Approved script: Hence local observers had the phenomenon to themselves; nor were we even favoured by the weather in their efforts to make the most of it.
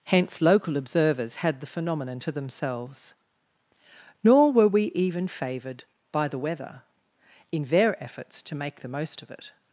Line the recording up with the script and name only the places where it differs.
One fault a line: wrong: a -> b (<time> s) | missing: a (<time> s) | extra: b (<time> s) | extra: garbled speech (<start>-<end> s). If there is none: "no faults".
no faults